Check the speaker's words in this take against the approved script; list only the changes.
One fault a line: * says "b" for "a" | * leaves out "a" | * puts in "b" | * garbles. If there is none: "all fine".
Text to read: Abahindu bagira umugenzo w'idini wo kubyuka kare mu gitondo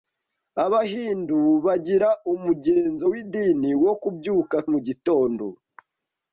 * leaves out "kare"